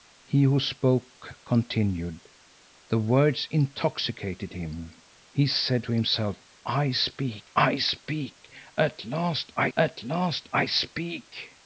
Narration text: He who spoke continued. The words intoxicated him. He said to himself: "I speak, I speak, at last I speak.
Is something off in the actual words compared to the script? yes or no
yes